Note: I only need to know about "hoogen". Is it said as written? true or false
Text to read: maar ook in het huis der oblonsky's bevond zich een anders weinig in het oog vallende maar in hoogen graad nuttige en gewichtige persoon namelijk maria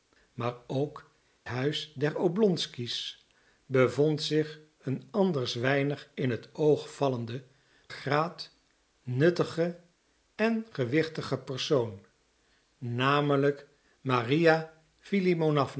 false